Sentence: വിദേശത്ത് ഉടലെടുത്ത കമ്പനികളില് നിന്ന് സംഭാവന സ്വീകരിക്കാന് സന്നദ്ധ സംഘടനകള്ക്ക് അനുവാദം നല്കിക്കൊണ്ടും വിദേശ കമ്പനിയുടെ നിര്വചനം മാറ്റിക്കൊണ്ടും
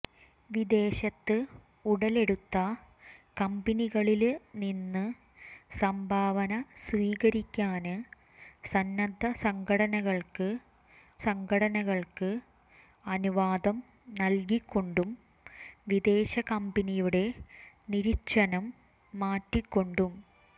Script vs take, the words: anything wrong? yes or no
yes